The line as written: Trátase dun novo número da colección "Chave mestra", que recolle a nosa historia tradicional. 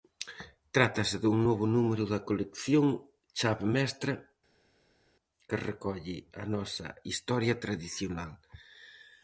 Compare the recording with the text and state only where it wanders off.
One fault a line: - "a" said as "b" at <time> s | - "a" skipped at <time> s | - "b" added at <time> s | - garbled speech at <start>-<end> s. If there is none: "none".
none